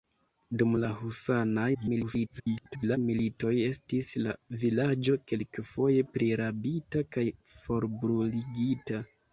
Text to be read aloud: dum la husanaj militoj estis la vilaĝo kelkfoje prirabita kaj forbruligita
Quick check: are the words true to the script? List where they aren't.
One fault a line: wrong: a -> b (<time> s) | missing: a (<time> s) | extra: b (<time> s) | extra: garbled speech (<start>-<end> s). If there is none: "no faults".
extra: garbled speech (1.7-3.0 s)